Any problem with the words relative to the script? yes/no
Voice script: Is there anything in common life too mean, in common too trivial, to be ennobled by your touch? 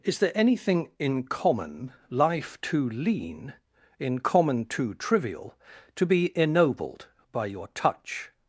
yes